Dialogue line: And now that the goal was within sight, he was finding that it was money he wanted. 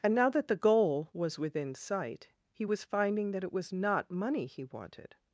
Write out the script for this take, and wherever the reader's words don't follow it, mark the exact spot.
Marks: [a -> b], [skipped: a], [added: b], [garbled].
And now that the goal was within sight, he was finding that it was [added: not] money he wanted.